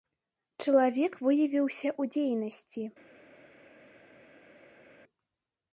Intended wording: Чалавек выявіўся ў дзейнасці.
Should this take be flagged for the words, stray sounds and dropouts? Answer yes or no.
no